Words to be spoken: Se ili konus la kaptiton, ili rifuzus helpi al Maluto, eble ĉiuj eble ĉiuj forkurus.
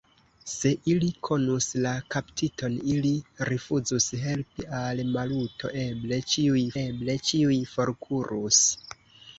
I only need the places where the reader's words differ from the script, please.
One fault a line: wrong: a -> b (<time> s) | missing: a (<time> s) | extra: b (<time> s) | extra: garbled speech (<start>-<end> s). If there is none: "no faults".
no faults